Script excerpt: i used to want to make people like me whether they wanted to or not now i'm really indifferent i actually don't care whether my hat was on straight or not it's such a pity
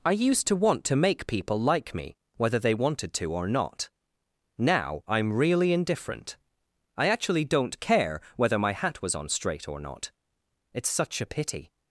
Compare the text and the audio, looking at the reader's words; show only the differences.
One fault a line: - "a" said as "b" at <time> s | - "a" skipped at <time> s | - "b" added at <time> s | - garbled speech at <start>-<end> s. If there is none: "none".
none